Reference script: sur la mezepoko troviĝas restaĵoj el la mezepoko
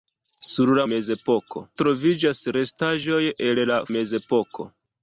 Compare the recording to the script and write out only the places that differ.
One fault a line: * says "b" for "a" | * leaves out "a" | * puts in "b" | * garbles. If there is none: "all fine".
all fine